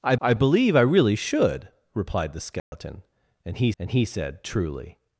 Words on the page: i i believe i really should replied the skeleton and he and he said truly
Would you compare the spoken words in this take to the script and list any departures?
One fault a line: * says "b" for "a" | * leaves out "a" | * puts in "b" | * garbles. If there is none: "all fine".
all fine